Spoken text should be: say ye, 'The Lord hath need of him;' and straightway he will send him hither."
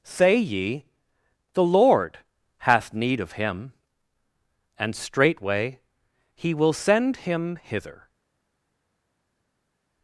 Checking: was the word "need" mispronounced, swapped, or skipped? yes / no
no